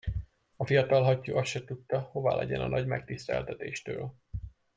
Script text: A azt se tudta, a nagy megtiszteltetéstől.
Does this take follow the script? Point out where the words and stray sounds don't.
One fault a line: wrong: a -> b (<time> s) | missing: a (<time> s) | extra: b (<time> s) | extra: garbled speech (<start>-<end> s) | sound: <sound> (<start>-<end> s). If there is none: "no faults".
extra: fiatal hattyú (0.6 s)
extra: hová legyen (2.0 s)